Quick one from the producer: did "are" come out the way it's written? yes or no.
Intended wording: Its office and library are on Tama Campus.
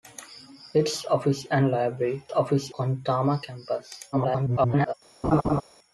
no